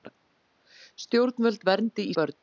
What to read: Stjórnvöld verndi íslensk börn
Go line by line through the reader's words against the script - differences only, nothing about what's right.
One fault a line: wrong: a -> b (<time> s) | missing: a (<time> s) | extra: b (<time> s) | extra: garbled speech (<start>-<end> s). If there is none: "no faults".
missing: íslensk (2.1 s)